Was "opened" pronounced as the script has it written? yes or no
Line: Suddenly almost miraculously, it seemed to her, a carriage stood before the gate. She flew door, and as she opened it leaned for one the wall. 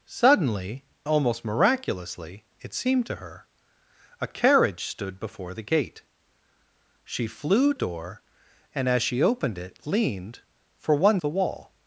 yes